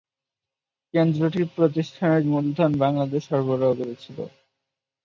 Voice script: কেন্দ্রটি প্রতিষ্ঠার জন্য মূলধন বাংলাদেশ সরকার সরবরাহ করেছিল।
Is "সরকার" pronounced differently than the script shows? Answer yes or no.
yes